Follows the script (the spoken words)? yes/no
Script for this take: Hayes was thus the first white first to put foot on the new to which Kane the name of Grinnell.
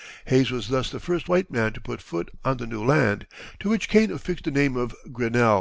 no